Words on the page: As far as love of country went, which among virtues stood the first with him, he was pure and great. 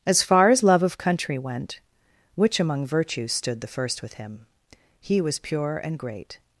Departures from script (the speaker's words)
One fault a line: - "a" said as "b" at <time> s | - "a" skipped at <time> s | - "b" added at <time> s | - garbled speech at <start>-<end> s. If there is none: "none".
none